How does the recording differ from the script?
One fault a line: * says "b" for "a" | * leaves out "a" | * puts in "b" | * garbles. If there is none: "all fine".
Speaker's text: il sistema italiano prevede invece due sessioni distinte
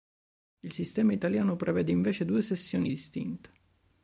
all fine